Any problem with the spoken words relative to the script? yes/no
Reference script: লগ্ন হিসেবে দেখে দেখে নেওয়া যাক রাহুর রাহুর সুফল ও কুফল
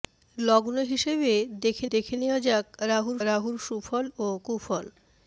no